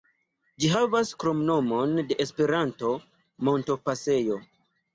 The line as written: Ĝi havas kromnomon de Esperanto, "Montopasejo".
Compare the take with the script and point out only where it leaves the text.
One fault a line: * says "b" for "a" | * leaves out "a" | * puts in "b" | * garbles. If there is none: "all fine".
all fine